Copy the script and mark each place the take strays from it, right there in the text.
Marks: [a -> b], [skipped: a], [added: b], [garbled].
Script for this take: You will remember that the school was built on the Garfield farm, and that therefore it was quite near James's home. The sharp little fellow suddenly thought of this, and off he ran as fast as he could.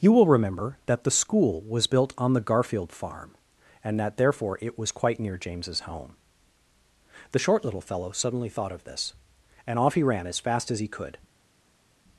You will remember that the school was built on the Garfield farm, and that therefore it was quite near James's home. The [sharp -> short] little fellow suddenly thought of this, and off he ran as fast as he could.